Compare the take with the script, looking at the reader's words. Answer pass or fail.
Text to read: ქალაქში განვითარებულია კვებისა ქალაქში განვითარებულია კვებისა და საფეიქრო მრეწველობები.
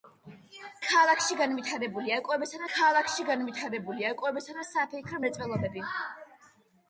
pass